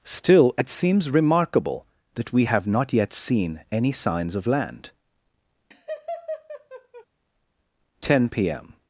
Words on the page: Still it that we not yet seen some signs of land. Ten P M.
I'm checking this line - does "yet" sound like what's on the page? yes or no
yes